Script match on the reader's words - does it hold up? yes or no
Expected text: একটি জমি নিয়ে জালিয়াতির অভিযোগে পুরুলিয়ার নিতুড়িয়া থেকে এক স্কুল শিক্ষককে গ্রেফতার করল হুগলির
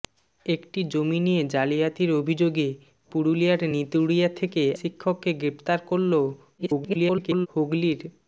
no